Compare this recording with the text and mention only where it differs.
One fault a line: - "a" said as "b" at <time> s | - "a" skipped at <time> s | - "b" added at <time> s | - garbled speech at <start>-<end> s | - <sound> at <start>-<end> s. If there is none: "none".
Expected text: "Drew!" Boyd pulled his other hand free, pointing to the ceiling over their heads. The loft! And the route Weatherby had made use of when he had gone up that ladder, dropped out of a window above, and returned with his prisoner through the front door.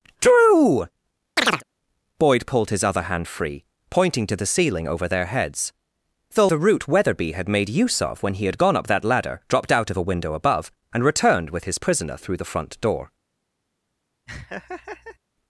- chirp at 1.4-1.6 s
- "loft And" skipped at 6.5 s
- laugh at 14.3-15.2 s